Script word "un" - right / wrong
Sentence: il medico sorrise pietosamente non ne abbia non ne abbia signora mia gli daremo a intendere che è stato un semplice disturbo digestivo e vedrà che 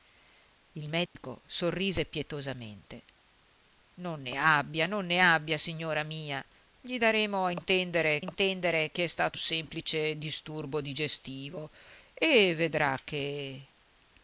wrong